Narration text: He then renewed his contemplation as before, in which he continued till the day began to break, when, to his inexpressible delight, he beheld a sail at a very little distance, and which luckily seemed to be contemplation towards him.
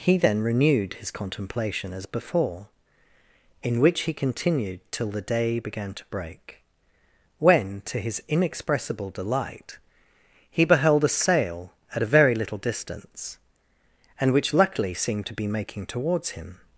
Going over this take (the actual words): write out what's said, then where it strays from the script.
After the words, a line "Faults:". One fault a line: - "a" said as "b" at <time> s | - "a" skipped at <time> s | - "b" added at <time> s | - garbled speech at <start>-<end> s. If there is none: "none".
He then renewed his contemplation as before, in which he continued till the day began to break, when, to his inexpressible delight, he beheld a sail at a very little distance, and which luckily seemed to be making towards him.
Faults:
- "contemplation" said as "making" at 15.5 s